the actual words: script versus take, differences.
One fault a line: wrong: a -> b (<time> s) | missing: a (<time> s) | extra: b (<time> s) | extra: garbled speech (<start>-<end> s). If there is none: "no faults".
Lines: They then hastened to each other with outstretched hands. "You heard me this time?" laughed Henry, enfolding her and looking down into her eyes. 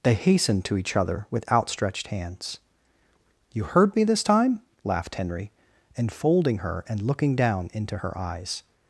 missing: then (0.1 s)